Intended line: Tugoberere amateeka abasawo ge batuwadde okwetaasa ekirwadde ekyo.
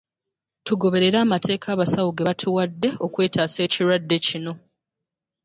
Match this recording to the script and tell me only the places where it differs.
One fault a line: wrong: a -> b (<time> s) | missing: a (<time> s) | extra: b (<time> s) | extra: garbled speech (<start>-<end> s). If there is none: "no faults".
wrong: ekyo -> kino (4.3 s)